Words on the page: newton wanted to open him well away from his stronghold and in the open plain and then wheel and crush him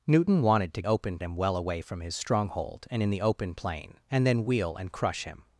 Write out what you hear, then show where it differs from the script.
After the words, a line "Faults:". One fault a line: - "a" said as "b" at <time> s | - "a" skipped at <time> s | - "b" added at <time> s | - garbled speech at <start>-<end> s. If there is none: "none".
newton wanted to open him well away from his stronghold and in the open plain and then wheel and crush him
Faults:
none